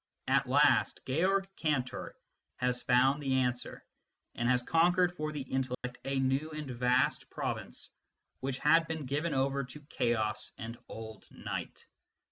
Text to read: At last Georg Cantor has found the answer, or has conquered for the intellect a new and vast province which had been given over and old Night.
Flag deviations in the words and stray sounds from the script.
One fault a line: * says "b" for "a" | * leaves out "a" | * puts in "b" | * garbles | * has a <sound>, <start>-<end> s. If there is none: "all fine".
* says "and" for "or"
* has a dropout, 5.7-5.8 s
* puts in "to Chaos"